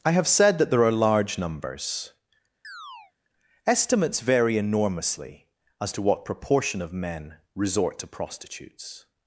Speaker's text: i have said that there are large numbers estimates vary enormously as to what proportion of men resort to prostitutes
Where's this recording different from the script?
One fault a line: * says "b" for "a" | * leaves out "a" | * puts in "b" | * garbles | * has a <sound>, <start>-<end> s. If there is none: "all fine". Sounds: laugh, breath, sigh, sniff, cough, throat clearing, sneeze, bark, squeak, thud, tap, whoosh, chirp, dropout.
* has a chirp, 2.6-3.1 s